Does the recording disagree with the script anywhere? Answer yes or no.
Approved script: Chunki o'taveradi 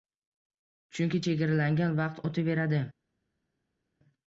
yes